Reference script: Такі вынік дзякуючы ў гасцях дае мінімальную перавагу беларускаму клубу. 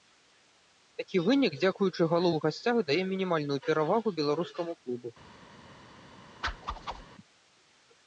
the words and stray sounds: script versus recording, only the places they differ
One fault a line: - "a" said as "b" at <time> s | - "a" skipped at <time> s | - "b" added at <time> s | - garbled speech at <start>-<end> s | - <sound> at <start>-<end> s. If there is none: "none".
- "галу" added at 2.1 s
- whoosh at 6.4-7.1 s